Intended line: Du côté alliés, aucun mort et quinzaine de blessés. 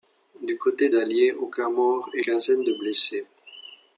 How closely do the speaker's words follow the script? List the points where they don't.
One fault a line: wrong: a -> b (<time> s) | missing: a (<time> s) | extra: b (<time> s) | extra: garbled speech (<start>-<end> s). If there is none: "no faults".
no faults